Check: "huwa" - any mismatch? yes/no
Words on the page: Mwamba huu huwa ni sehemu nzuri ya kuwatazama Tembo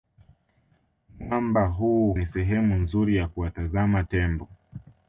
yes